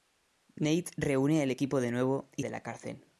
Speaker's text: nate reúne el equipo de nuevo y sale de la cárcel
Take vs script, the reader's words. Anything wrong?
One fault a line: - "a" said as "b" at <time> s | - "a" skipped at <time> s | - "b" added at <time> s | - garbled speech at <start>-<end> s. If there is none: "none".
- "sale" skipped at 2.5 s